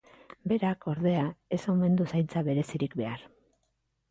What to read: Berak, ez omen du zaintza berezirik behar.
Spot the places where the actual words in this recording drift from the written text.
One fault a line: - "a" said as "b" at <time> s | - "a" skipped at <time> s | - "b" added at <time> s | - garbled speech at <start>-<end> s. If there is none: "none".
- "ordea" added at 0.9 s